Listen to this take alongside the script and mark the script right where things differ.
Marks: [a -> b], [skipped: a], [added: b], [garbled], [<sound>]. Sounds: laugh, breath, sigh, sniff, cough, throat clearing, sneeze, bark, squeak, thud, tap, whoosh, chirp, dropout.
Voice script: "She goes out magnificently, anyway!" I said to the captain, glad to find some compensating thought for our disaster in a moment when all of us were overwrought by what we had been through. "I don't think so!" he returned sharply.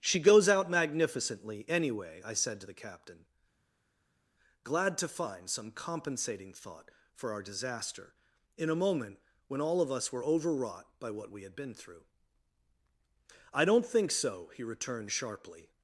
"She goes out magnificently, anyway!" I said to the captain, glad to find some compensating thought for our disaster in a moment when all of us were overwrought by what we had been through. "I don't think so!" he returned sharply.